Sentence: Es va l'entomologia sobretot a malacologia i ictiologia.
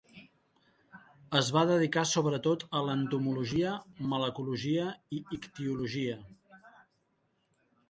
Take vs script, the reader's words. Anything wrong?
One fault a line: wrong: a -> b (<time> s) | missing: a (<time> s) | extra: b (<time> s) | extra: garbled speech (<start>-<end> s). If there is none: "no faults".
wrong: l'entomologia -> dedicar (1.7 s)
extra: l'entomologia (2.9 s)